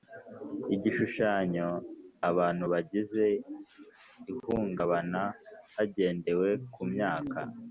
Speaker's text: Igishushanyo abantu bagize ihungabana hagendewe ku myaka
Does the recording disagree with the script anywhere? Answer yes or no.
no